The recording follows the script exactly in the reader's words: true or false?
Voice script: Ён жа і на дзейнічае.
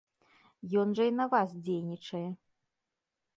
false